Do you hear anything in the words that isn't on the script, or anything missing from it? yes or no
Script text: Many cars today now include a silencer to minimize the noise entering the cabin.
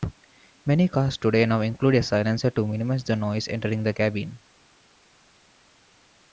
no